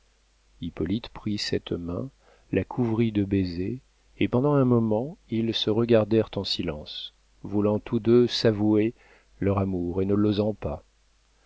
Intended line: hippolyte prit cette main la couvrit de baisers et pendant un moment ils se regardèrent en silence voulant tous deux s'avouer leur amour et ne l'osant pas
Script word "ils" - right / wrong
right